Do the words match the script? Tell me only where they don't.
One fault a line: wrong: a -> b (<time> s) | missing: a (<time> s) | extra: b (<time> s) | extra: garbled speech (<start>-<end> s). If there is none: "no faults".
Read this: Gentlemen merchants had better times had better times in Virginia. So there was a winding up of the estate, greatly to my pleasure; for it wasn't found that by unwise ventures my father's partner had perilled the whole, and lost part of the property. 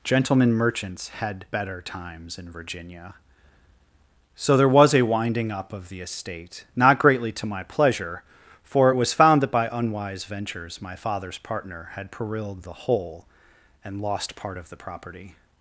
missing: had better times (2.4 s)
extra: not (6.7 s)
wrong: wasn't -> was (8.9 s)